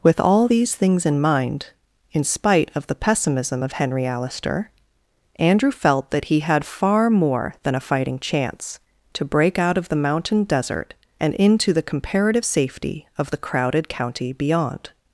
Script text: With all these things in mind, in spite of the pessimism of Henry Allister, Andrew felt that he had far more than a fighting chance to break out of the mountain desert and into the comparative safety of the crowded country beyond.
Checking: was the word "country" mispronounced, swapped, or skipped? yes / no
yes